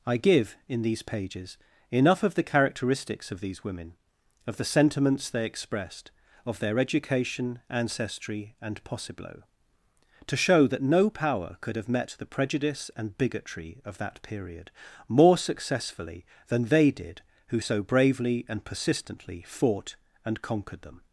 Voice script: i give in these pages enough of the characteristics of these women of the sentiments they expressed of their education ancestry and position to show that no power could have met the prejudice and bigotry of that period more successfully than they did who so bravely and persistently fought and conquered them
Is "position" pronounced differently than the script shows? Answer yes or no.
yes